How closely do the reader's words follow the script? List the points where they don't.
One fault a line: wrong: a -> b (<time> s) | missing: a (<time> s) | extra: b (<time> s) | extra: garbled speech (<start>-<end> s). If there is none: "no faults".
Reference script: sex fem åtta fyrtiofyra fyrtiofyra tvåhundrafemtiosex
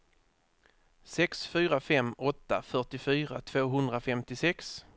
extra: fyra (1.5 s)
missing: fyrtiofyra (3.4 s)